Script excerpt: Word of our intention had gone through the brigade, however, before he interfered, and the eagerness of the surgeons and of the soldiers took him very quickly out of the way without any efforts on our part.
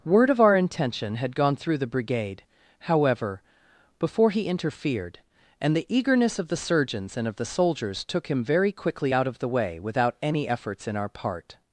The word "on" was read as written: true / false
false